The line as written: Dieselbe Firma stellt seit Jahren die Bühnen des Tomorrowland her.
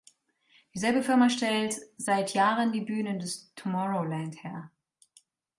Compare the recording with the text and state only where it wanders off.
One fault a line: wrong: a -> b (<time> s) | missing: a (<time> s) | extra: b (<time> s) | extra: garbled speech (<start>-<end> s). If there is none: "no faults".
no faults